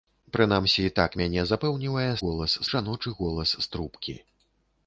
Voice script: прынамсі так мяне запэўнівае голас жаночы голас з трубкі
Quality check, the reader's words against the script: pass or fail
pass